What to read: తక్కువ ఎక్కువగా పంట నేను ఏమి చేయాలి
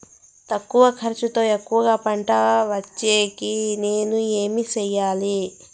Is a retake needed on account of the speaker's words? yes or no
yes